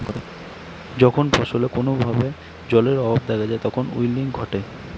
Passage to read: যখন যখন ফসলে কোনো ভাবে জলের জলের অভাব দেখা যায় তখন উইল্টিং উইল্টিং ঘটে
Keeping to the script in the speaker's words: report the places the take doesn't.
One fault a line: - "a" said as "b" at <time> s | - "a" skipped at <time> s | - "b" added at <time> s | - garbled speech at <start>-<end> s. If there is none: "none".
- "যখন" skipped at 1.2 s
- "জলের" skipped at 3.0 s
- "উইল্টিং" skipped at 4.2 s